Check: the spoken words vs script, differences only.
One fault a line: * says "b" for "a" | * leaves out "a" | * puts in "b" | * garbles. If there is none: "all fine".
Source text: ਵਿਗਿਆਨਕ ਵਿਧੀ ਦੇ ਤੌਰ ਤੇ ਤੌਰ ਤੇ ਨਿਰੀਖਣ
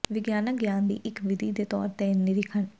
* puts in "ਗਿਆਨ ਦੀ ਇੱਕ"
* leaves out "ਤੌਰ ਤੇ"